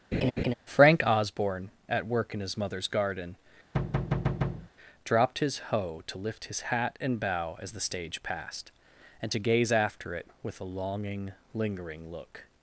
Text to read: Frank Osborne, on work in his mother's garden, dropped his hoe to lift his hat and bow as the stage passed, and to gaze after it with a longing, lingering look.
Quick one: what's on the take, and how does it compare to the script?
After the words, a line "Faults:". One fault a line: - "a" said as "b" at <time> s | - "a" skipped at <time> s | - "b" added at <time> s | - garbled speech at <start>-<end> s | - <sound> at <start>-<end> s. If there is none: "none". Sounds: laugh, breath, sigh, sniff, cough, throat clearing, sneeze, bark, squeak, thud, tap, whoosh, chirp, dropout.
Frank Osborne, at work in his mother's garden, dropped his hoe to lift his hat and bow as the stage passed, and to gaze after it with a longing, lingering look.
Faults:
- laugh at 0.1-0.5 s
- "on" said as "at" at 1.9 s
- thud at 3.7-4.7 s